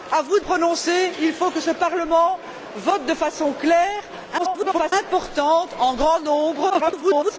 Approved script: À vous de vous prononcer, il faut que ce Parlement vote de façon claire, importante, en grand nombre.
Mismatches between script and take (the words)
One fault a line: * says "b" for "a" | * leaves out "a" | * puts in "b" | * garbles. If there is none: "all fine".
* leaves out "vous"
* garbles
* garbles